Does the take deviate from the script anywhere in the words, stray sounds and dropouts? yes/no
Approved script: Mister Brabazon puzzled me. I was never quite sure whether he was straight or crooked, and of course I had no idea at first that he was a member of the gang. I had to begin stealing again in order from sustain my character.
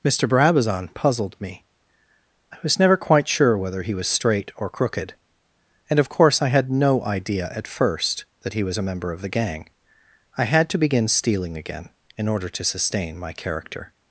yes